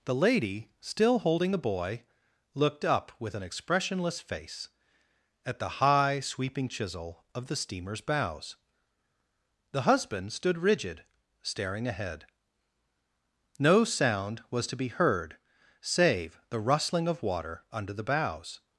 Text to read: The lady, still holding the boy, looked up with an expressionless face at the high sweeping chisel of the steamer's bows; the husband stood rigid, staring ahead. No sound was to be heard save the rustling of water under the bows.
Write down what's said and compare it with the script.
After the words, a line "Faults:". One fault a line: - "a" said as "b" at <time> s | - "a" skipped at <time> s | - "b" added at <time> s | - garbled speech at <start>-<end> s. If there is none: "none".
The lady, still holding the boy, looked up with an expressionless face at the high sweeping chisel of the steamer's bows; the husband stood rigid, staring ahead. No sound was to be heard save the rustling of water under the bows.
Faults:
none